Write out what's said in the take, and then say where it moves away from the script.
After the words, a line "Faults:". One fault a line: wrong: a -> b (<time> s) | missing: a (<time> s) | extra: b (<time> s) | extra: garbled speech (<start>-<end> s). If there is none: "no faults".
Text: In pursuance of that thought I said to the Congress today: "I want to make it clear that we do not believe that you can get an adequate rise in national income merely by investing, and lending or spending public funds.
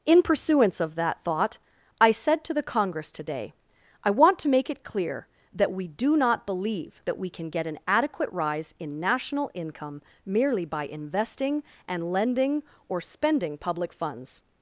In pursuance of that thought I said to the Congress today: "I want to make it clear that we do not believe that we can get an adequate rise in national income merely by investing, and lending or spending public funds.
Faults:
wrong: you -> we (7.2 s)